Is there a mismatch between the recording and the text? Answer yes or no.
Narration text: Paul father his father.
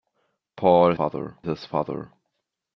no